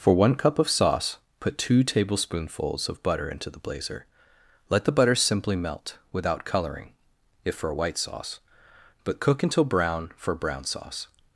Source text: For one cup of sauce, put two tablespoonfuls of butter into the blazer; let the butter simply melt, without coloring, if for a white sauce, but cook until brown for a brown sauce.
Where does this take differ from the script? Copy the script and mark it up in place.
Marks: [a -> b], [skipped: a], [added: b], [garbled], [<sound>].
For one cup of sauce, put two tablespoonfuls of butter into the blazer; let the butter simply melt, without coloring, if for a white sauce, but cook until brown for [skipped: a] brown sauce.